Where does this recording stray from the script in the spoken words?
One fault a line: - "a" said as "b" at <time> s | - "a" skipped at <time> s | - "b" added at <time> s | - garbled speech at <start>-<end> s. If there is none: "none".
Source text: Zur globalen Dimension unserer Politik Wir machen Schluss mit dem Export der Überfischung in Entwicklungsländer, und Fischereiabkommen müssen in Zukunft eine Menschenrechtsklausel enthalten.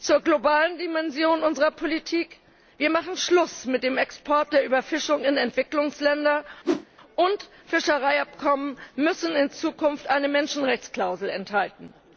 none